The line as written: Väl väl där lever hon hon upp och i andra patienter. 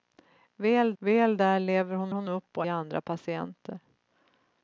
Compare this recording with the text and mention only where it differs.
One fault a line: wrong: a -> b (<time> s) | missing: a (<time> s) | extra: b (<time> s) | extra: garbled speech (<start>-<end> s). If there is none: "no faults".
no faults